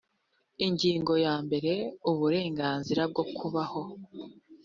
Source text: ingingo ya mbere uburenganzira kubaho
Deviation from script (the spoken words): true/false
true